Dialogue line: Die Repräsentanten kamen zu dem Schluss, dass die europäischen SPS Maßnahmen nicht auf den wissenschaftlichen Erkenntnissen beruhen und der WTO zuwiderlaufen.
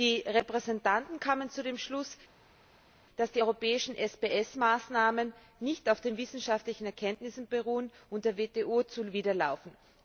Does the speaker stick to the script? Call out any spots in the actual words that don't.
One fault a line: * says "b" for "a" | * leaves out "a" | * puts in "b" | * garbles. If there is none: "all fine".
all fine